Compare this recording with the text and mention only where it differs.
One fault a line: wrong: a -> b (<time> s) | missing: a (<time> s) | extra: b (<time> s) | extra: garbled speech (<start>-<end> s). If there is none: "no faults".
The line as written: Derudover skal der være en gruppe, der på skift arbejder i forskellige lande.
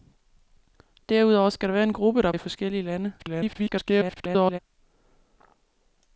missing: på skift arbejder (2.3 s)
extra: garbled speech (3.2-4.6 s)